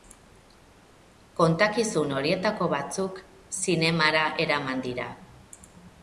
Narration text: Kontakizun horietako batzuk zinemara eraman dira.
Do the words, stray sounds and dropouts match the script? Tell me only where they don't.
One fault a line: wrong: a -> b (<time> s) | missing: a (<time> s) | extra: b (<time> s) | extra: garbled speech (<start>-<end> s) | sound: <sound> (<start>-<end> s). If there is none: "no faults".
no faults